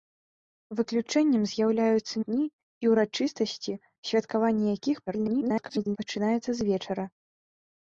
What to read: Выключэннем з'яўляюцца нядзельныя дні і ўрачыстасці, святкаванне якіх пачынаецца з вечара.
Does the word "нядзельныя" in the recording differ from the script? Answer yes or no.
yes